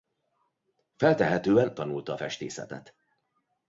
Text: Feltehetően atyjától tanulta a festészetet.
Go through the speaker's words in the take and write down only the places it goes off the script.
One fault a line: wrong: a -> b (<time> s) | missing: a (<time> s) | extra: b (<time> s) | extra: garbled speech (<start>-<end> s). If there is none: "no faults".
missing: atyjától (1.7 s)